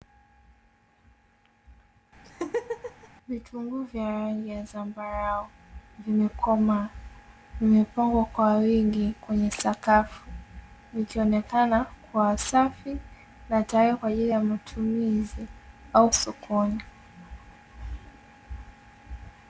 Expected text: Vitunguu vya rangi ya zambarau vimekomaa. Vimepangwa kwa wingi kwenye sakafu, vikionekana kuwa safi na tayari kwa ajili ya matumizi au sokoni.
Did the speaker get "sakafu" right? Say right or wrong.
right